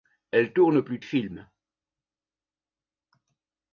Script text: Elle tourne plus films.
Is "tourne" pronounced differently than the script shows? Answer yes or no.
no